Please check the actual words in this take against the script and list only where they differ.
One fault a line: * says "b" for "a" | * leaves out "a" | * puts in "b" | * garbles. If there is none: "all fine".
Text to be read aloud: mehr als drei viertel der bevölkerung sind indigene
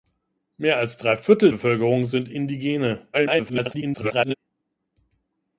* leaves out "der"
* garbles